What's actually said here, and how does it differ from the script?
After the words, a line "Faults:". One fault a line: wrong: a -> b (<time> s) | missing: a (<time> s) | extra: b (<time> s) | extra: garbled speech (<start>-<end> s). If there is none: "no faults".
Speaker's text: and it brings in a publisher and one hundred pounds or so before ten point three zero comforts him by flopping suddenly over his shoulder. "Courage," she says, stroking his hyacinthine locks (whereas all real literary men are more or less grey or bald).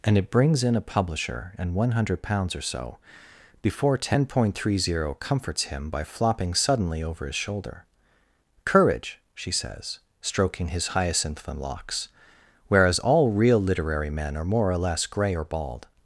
and it brings in a publisher and one hundred pounds or so before ten point three zero comforts him by flopping suddenly over his shoulder. "Courage," she says, stroking his hyacinthine locks (whereas all real literary men are more or less grey or bald).
Faults:
no faults